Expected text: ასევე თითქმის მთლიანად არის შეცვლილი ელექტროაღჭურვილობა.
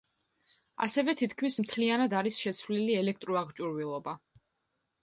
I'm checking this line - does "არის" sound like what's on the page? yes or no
yes